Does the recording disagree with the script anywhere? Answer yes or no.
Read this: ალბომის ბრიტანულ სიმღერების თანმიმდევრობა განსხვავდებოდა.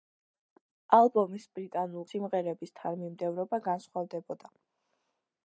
no